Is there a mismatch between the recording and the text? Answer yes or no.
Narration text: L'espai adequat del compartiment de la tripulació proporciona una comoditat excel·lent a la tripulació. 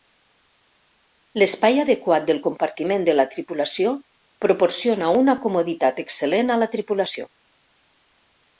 no